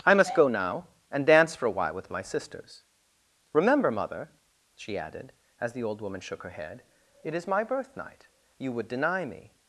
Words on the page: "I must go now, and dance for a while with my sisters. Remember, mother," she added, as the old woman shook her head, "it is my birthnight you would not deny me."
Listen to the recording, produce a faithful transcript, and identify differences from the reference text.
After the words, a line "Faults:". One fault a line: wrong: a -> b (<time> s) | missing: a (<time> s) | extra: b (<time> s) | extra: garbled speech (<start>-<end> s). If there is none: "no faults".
"I must go now, and dance for a while with my sisters. Remember, mother," she added, as the old woman shook her head, "it is my birthnight you would deny me."
Faults:
missing: not (8.9 s)